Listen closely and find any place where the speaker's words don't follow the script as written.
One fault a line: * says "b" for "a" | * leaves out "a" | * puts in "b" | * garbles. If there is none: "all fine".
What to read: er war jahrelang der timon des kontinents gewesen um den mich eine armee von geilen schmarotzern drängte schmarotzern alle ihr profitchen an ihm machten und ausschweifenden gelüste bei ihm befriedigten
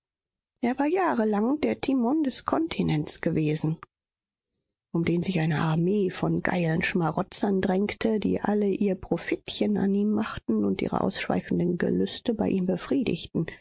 * says "sich" for "mich"
* says "die" for "schmarotzern"
* puts in "ihre"